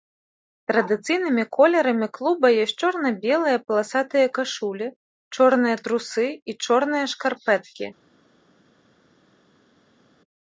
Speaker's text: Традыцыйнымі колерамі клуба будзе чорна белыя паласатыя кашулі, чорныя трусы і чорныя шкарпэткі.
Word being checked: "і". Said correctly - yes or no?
yes